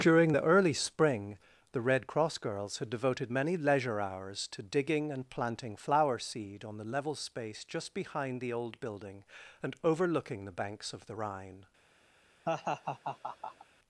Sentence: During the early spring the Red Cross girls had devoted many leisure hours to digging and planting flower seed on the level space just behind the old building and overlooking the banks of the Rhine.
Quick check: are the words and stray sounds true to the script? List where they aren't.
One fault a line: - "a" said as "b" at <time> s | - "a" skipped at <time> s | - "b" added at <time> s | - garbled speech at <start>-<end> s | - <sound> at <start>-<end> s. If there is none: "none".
- laugh at 12.5-13.7 s